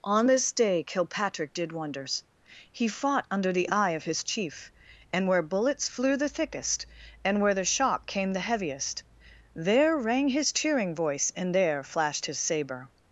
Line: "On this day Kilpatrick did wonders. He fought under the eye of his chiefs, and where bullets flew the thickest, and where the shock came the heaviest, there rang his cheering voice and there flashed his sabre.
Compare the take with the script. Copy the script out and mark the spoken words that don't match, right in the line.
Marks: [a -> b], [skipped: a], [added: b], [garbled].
"On this day Kilpatrick did wonders. He fought under the eye of his [chiefs, -> chief] and where bullets flew the thickest, and where the shock came the heaviest, there rang his cheering voice and there flashed his sabre.